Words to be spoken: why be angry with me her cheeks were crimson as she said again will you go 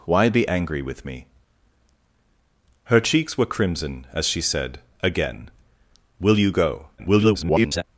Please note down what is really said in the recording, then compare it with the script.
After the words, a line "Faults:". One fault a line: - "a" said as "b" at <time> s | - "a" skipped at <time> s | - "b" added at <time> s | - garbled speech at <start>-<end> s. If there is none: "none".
why be angry with me her cheeks were crimson as she said again will you go [garbled]
Faults:
- garbled speech at 7.0-7.8 s